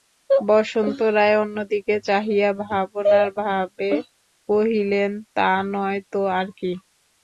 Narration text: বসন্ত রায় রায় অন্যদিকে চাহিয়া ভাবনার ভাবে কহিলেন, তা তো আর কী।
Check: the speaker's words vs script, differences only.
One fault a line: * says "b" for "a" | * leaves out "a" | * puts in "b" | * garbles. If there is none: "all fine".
* leaves out "রায়"
* puts in "নয়"